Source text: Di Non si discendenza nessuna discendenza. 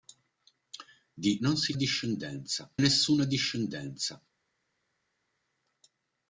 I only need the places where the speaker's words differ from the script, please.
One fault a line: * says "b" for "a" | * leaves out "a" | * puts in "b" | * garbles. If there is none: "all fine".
all fine